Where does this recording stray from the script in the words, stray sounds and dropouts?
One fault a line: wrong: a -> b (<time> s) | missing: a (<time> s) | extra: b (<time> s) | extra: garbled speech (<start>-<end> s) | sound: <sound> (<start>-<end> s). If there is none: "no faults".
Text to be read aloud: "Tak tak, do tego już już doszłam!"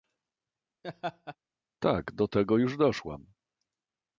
sound: laugh (0.8-1.4 s)
missing: tak (2.1 s)
missing: już (2.8 s)